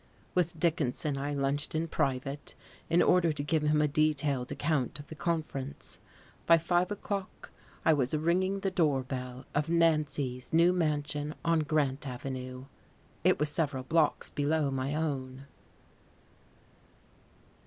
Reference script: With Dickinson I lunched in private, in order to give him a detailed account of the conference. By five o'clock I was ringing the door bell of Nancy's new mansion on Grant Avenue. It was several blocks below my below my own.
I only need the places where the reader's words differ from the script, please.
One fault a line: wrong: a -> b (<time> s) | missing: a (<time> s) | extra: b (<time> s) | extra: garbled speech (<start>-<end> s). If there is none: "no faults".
missing: below my (14.9 s)